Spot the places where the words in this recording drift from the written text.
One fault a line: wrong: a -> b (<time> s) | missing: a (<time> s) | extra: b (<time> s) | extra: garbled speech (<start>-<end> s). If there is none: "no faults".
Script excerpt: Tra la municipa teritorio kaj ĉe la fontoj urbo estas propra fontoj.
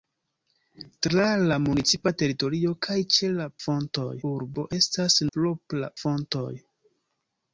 no faults